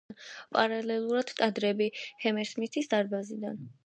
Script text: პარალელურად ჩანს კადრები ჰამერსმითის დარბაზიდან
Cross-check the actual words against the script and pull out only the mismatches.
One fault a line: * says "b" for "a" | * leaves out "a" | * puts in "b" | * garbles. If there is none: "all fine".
* leaves out "ჩანს"